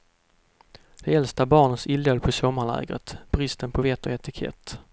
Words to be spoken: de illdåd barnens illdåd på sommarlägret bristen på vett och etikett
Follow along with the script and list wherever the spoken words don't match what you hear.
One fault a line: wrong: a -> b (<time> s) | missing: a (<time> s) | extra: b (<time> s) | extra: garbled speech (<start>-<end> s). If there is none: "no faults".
wrong: illdåd -> äldsta (1.1 s)